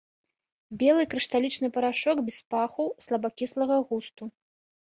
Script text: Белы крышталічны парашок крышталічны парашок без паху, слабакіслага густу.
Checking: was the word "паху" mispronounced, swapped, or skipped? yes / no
no